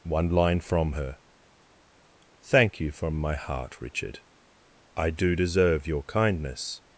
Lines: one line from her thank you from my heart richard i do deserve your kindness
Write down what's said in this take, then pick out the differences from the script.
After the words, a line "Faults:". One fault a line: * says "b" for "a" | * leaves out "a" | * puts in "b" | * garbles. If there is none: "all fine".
one line from her thank you from my heart richard i do deserve your kindness
Faults:
all fine